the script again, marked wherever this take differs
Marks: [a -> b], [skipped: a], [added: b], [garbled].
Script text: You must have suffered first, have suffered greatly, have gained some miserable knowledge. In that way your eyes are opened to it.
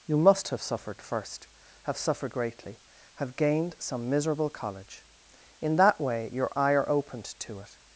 You must have suffered first, have suffered greatly, have gained some miserable [knowledge. -> college] In that way your [eyes -> eye] are opened to it.